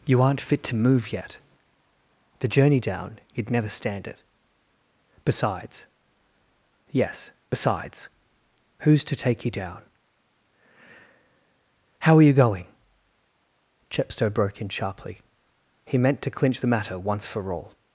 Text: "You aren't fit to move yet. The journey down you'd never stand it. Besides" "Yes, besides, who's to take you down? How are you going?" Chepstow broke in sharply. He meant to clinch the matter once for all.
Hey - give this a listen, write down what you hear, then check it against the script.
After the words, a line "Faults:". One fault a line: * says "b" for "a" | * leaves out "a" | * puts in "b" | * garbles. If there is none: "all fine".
"You aren't fit to move yet. The journey down you'd never stand it. Besides" "Yes, besides, who's to take you down? How are you going?" Chepstow broke in sharply. He meant to clinch the matter once for all.
Faults:
all fine